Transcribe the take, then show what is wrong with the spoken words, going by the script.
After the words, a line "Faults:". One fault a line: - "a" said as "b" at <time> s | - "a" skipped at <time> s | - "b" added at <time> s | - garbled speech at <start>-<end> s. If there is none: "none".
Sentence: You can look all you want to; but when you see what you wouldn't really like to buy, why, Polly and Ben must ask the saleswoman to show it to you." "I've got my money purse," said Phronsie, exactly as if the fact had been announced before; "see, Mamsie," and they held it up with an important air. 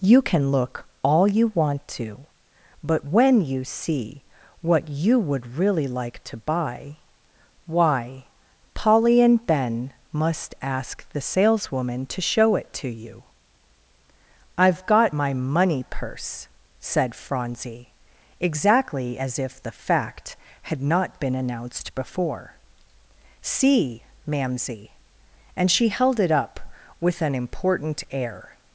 You can look all you want to; but when you see what you would really like to buy, why, Polly and Ben must ask the saleswoman to show it to you." "I've got my money purse," said Phronsie, exactly as if the fact had not been announced before; "see, Mamsie," and she held it up with an important air.
Faults:
- "wouldn't" said as "would" at 5.2 s
- "not" added at 20.8 s
- "they" said as "she" at 25.7 s